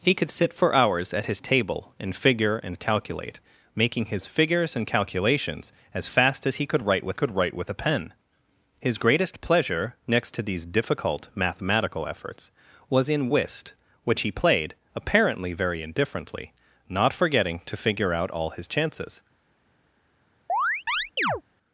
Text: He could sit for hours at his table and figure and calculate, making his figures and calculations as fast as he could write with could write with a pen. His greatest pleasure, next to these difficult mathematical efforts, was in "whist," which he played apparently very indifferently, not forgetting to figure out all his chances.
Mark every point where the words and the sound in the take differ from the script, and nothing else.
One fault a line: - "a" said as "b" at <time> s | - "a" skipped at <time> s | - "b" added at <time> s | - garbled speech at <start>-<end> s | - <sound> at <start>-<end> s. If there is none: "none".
- chirp at 20.5-21.4 s